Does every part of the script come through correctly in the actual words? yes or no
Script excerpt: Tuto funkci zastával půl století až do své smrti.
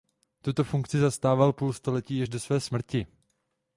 yes